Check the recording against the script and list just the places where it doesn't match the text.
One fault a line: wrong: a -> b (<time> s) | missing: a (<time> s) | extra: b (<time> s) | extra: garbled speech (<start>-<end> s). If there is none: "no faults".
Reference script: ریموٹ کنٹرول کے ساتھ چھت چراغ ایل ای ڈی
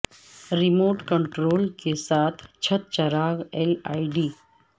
no faults